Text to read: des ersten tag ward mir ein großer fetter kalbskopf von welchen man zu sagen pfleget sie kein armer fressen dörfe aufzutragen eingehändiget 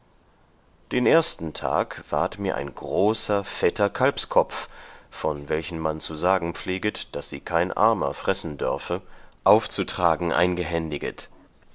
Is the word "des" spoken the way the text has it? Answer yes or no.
no